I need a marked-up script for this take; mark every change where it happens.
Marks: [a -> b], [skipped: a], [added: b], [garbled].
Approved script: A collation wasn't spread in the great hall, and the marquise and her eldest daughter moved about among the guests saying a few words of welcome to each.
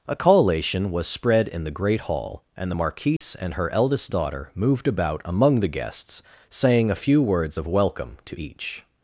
A collation [wasn't -> was] spread in the great hall, and the marquise and her eldest daughter moved about among the guests saying a few words of welcome to each.